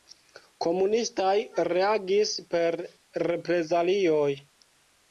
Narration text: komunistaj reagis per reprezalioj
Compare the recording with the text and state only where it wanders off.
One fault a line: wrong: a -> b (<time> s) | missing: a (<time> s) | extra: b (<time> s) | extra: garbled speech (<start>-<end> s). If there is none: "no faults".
no faults